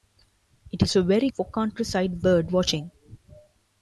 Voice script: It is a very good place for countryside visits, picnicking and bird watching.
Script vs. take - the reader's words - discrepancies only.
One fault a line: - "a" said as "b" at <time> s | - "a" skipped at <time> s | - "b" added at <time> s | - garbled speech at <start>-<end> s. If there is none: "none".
- "good place" skipped at 1.3 s
- "visits picnicking and" skipped at 2.2 s